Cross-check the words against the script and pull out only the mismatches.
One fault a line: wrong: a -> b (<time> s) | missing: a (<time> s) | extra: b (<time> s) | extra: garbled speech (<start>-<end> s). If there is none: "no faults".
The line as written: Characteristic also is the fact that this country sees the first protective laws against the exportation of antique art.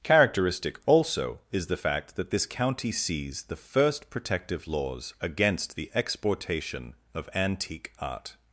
wrong: country -> county (2.5 s)